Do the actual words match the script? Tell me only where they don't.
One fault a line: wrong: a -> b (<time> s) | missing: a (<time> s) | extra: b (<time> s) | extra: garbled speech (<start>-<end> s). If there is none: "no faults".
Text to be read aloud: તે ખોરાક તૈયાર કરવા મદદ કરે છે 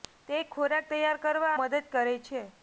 no faults